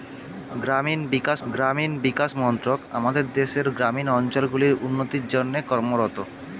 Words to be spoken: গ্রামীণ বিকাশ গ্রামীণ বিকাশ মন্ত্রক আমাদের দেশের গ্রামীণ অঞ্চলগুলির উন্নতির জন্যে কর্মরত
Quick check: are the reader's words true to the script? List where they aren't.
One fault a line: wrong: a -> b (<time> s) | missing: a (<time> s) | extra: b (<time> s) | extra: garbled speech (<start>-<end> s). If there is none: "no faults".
no faults